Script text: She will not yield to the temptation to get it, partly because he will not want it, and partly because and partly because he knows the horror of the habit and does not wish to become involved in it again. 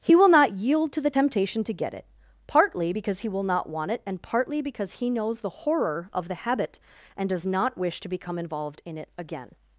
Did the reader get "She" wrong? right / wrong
wrong